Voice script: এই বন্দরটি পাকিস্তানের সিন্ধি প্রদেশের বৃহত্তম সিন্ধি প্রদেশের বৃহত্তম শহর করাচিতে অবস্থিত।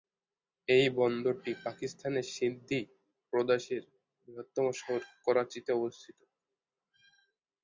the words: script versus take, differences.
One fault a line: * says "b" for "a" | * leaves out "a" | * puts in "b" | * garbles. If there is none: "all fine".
* leaves out "সিন্ধি প্রদেশের বৃহত্তম"